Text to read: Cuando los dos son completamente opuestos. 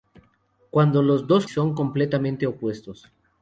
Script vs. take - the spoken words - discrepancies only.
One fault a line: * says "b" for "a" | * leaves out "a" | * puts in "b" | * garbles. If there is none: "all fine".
all fine